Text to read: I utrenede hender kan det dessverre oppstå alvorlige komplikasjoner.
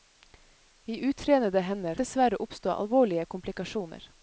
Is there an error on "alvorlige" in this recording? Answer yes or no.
no